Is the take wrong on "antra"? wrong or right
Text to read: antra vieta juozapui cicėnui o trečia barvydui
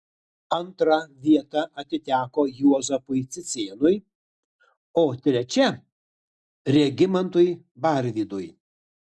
right